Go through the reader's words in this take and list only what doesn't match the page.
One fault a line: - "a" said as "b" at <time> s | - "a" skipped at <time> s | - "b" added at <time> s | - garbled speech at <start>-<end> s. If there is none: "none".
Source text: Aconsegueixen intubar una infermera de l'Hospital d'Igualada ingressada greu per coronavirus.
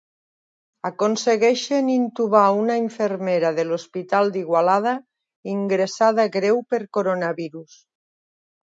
none